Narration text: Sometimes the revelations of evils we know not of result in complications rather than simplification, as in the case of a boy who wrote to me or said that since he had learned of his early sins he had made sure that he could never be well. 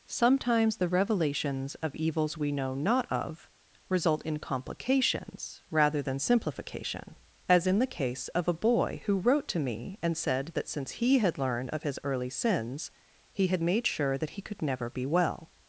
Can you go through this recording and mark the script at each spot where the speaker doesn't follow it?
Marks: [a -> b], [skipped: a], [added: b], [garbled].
Sometimes the revelations of evils we know not of result in complications rather than simplification, as in the case of a boy who wrote to me [or -> and] said that since he had learned of his early sins he had made sure that he could never be well.